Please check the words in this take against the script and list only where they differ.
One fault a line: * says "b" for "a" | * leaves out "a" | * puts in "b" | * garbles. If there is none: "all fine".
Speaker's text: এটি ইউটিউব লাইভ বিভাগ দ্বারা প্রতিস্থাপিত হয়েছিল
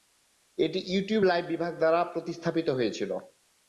all fine